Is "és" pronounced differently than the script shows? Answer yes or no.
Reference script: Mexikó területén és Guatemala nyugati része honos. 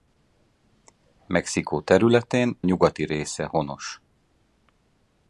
yes